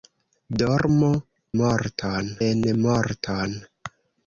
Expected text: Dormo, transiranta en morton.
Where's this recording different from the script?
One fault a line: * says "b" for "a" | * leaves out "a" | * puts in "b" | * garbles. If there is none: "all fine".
* says "morton" for "transiranta"